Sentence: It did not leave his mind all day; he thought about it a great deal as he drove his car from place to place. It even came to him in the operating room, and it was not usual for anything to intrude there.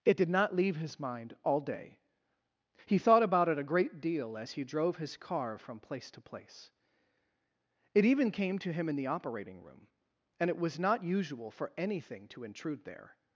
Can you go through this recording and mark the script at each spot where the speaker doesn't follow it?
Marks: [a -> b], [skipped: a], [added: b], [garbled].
It did not leave his mind all day; he thought about it a great deal as he drove his car from place to place. It even came to him in the operating room, and it was not usual for anything to intrude there.